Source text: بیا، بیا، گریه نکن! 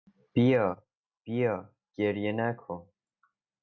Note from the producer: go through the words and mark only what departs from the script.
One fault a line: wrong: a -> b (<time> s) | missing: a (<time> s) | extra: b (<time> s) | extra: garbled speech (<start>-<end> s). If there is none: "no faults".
no faults